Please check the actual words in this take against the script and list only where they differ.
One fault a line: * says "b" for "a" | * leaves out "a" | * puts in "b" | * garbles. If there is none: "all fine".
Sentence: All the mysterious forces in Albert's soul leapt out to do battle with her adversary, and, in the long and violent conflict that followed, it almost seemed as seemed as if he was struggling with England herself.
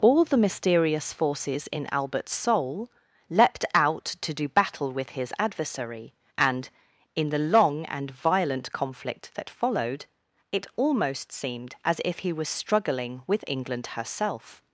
* says "his" for "her"
* leaves out "seemed as"